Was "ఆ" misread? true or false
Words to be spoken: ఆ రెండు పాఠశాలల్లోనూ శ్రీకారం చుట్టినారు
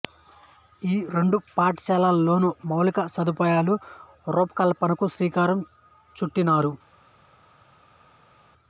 true